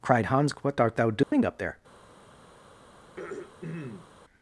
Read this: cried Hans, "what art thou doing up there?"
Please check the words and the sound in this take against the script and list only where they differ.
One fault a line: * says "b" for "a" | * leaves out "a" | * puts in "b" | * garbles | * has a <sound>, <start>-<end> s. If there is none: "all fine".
* has a dropout, 1.2-1.3 s
* has a throat clearing, 3.0-4.1 s